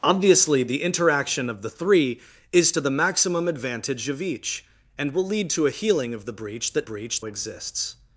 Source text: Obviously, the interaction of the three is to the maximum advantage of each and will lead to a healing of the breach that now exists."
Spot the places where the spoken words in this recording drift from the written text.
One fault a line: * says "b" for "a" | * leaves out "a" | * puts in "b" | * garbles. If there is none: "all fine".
* says "breach" for "now"